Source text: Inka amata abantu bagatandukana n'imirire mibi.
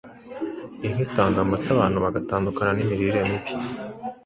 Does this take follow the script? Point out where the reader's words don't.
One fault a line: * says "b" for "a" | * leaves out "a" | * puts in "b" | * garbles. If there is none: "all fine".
* puts in "itanga"